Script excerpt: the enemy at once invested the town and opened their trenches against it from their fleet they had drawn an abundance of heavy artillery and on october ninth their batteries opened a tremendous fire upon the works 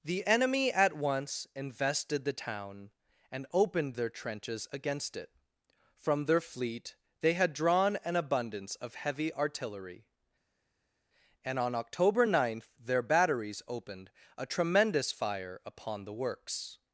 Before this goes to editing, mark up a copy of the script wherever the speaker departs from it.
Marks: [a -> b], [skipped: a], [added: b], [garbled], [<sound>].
the enemy at once invested the town and opened their trenches against it from their fleet they had drawn an abundance of heavy artillery and on october ninth their batteries opened a tremendous fire upon the works